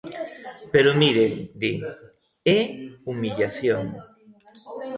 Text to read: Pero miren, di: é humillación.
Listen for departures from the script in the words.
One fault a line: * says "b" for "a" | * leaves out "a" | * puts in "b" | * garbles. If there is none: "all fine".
all fine